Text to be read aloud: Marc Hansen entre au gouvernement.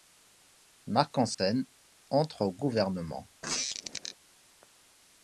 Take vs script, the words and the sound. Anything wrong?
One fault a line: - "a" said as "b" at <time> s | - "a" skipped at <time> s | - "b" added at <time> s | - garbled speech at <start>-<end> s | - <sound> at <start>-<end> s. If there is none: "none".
- dropout at 1.3-1.4 s
- squeak at 3.4-4.2 s